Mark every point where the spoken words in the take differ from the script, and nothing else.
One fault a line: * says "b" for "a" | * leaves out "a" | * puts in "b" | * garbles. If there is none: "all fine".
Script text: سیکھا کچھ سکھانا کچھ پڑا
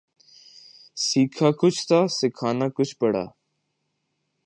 * puts in "تھا"